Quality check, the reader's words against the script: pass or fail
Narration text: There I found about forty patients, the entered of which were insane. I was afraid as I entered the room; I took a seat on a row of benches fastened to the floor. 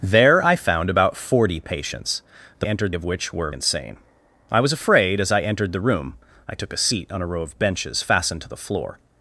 pass